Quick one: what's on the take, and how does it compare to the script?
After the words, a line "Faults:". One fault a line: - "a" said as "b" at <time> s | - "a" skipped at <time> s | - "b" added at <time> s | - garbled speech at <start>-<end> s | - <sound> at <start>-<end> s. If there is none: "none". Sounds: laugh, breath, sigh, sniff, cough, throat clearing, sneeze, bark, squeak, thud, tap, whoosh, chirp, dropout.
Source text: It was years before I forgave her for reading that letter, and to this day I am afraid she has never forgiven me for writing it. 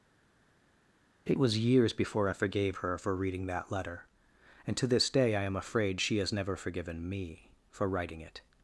It was years before I forgave her for reading that letter, and to this day I am afraid she has never forgiven me for writing it.
Faults:
none